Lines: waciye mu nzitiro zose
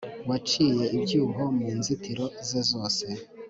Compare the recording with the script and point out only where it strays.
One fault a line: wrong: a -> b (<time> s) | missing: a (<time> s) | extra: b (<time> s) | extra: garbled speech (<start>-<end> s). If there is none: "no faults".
extra: ibyuho (1.0 s)
extra: ze (2.5 s)